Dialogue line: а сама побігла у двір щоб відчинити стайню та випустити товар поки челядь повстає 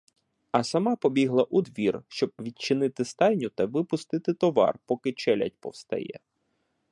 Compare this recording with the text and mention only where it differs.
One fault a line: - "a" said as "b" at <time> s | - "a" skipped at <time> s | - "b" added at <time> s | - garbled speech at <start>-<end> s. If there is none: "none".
none